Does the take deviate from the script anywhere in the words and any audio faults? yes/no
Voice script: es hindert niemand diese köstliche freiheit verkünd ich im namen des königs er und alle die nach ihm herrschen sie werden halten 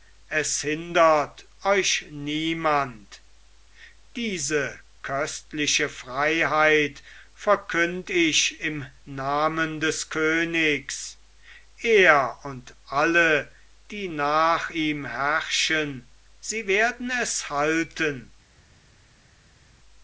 yes